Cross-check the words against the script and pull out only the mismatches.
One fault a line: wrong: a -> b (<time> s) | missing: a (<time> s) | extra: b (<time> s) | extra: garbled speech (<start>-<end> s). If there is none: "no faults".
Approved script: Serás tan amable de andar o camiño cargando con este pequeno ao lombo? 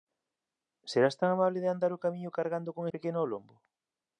missing: este (2.8 s)